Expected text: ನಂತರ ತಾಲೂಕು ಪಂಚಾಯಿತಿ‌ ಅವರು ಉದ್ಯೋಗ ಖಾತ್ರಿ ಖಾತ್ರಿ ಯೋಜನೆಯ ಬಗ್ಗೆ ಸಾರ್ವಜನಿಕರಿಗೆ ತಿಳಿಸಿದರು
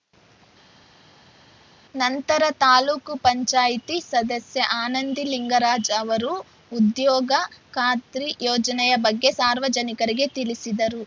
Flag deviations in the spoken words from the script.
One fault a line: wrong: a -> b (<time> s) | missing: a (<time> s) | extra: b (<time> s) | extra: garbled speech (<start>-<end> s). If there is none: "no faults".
extra: ಸದಸ್ಯೆ ಆನಂದಿ ಲಿಂಗರಾಜ್ (4.1 s)
missing: ಖಾತ್ರಿ (8.3 s)